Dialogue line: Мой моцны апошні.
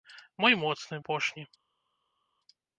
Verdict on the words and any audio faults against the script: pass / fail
pass